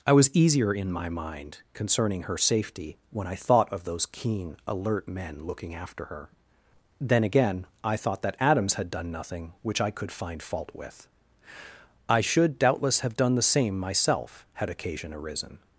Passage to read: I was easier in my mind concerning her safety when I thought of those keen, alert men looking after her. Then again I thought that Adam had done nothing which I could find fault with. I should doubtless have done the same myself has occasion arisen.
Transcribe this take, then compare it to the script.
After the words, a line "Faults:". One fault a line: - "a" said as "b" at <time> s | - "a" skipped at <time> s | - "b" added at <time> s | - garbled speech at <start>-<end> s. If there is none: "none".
I was easier in my mind concerning her safety when I thought of those keen, alert men looking after her. Then again I thought that Adams had done nothing which I could find fault with. I should doubtless have done the same myself had occasion arisen.
Faults:
- "Adam" said as "Adams" at 8.4 s
- "has" said as "had" at 14.5 s